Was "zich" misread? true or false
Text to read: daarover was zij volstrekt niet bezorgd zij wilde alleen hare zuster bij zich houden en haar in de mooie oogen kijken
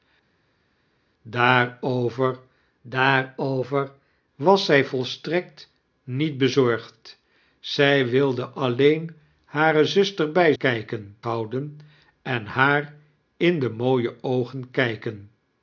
true